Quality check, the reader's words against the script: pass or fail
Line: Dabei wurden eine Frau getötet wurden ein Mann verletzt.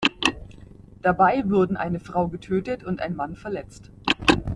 fail